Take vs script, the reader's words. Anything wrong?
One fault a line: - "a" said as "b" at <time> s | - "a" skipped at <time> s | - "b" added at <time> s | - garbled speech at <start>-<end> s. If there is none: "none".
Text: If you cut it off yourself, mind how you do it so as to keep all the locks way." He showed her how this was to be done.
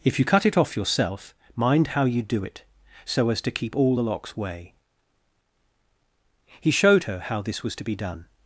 none